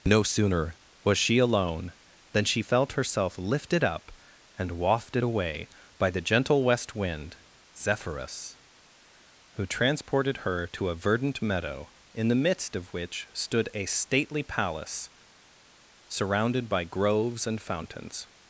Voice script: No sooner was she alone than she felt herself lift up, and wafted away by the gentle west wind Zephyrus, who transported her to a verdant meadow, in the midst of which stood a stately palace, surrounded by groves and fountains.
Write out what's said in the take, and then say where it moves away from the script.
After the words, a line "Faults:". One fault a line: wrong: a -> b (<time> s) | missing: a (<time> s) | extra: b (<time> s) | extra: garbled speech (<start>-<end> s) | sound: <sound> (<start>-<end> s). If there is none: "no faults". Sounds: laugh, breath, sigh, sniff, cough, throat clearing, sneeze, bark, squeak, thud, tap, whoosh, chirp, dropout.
No sooner was she alone than she felt herself lifted up, and wafted away by the gentle west wind Zephyrus, who transported her to a verdant meadow, in the midst of which stood a stately palace, surrounded by groves and fountains.
Faults:
wrong: lift -> lifted (3.4 s)